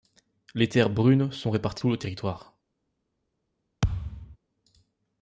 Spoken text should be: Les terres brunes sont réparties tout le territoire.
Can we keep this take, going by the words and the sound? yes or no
no